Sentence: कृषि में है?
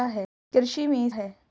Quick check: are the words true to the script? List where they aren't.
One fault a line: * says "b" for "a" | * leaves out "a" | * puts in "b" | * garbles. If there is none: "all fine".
all fine